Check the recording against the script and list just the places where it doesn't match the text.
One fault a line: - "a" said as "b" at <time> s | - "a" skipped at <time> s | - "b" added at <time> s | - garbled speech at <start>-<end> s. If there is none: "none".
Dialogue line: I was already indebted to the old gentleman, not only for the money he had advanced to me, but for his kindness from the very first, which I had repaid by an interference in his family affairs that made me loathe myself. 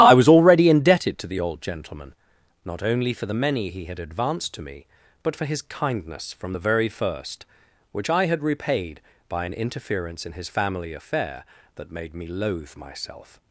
- "money" said as "many" at 3.4 s
- "affairs" said as "affair" at 10.9 s